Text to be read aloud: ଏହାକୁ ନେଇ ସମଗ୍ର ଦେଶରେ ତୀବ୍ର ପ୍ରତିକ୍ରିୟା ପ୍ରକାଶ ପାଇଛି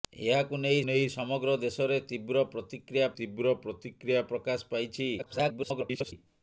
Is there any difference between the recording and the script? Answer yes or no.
yes